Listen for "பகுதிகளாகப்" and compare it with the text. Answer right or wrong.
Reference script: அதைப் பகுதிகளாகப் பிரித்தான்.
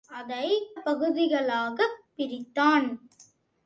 right